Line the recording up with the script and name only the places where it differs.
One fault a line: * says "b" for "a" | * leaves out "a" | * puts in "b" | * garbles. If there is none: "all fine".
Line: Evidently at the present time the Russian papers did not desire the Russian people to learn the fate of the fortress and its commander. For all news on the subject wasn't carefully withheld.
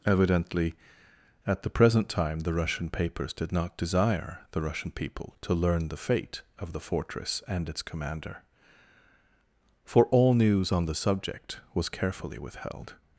* says "was" for "wasn't"